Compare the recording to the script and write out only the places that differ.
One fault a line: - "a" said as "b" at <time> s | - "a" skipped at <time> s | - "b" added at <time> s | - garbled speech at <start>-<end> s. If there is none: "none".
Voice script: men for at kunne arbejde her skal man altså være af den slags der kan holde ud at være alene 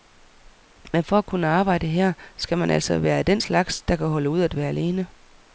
none